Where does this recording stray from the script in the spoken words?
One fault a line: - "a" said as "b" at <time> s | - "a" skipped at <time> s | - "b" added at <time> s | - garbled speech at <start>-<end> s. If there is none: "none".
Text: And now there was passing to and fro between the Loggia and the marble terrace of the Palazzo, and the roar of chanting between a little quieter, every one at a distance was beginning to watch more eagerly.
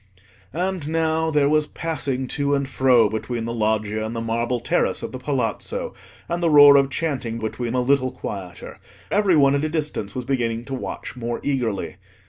none